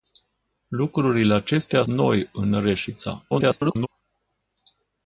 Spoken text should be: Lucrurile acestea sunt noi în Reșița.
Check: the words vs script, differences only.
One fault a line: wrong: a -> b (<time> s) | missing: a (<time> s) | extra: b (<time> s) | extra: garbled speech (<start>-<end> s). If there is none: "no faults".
missing: sunt (1.8 s)
extra: garbled speech (3.3-3.9 s)